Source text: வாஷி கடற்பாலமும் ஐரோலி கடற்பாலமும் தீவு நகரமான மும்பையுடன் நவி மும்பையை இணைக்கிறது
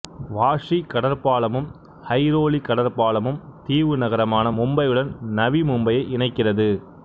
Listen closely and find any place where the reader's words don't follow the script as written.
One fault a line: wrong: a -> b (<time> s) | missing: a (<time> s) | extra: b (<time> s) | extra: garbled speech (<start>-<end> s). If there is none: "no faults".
no faults